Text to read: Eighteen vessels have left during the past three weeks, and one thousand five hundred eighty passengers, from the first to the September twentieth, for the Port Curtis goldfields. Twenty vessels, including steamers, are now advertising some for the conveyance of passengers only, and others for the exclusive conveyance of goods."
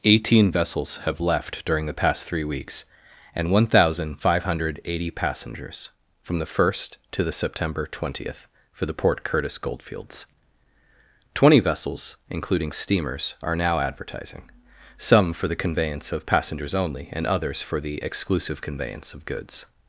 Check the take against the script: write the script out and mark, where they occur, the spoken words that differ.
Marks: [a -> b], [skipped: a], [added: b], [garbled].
Eighteen vessels have left during the past three weeks, and one thousand five hundred eighty passengers, from the first to the September twentieth, for the Port Curtis goldfields. Twenty vessels, including steamers, are now advertising some for the conveyance of passengers only, and others for the exclusive conveyance of goods."